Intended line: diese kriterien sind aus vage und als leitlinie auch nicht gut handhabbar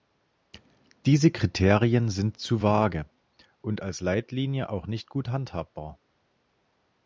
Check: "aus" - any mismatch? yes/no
yes